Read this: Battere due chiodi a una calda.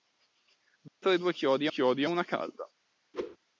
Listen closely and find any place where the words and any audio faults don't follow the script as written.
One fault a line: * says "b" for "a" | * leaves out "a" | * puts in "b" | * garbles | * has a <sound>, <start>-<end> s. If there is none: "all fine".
* has a dropout, 0.9-1.0 s
* puts in "chiodi"
* has a whoosh, 3.1-3.4 s